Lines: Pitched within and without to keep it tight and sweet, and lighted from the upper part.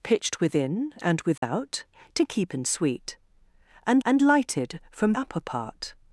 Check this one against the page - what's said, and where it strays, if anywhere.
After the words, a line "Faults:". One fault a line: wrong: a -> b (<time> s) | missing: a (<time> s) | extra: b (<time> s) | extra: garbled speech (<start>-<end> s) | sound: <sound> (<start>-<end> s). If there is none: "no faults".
Pitched within and without to keep and sweet, and and lighted from upper part.
Faults:
sound: dropout (1.4-1.4 s)
missing: it tight (2.5 s)
extra: and (4.1 s)
missing: the (5.1 s)